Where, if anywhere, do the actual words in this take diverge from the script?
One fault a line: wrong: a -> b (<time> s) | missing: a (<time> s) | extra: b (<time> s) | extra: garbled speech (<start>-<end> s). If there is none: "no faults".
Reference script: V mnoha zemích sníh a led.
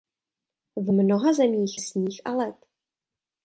no faults